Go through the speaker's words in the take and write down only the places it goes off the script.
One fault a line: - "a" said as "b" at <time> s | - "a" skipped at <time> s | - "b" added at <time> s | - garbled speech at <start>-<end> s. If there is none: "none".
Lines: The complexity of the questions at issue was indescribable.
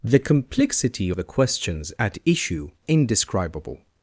- "of" skipped at 1.1 s
- "was" skipped at 2.7 s